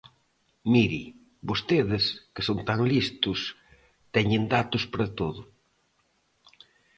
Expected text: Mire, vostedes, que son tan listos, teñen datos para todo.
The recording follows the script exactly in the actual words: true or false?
true